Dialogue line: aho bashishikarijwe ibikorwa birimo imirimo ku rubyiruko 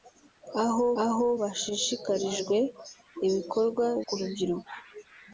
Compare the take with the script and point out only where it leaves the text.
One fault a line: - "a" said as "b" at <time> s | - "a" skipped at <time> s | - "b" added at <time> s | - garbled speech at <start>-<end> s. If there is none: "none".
- "aho" added at 1.0 s
- "birimo imirimo" skipped at 3.8 s